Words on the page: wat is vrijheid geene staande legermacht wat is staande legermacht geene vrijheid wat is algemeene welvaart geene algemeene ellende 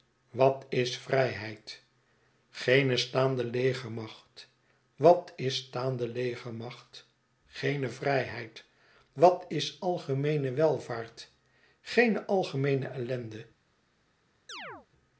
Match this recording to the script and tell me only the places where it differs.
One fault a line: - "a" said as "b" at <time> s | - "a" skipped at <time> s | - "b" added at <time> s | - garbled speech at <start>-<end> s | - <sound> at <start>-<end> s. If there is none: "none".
- chirp at 14.5-14.9 s